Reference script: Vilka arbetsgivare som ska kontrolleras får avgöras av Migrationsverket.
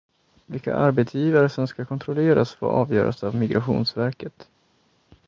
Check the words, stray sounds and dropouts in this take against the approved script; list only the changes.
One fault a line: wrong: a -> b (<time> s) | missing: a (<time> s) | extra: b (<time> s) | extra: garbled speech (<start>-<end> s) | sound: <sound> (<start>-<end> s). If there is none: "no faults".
no faults